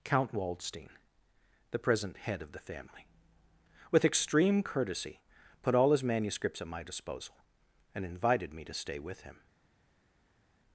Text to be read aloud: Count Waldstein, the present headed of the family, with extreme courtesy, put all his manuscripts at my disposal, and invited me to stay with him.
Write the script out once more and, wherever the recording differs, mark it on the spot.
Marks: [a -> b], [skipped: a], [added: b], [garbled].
Count Waldstein, the present [headed -> head] of the family, with extreme courtesy, put all his manuscripts at my disposal, and invited me to stay with him.